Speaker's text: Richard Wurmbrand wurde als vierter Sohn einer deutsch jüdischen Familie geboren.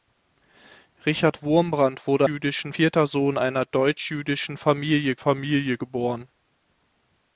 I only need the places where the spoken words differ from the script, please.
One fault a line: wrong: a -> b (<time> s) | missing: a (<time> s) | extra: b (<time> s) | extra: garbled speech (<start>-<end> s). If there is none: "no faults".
wrong: als -> jüdischen (2.3 s)
extra: Familie (5.2 s)